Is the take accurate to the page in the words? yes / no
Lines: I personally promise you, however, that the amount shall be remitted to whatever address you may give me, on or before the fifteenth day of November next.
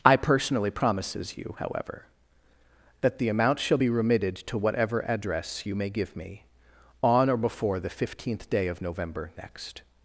no